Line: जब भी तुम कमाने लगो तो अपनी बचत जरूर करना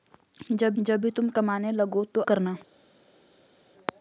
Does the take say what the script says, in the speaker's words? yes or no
no